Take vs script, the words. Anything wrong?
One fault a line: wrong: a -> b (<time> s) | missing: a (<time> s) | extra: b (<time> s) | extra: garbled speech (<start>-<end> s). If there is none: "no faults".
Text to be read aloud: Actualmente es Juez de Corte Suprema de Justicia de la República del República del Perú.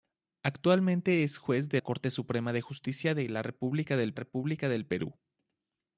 no faults